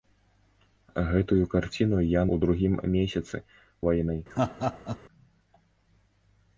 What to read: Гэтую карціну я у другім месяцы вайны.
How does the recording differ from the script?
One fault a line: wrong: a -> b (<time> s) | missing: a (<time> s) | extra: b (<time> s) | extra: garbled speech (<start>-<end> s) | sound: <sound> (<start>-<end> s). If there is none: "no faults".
sound: laugh (4.3-5.0 s)